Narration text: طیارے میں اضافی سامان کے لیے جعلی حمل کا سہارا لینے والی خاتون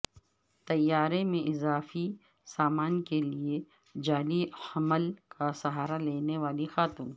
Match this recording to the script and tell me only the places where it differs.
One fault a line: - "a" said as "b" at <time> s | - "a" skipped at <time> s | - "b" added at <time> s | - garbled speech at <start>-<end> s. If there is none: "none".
none